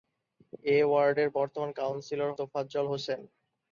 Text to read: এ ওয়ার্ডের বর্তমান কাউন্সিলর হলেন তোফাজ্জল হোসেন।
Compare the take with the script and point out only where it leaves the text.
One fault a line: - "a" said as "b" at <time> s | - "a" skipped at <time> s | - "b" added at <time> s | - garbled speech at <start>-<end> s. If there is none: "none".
- "হলেন" skipped at 2.3 s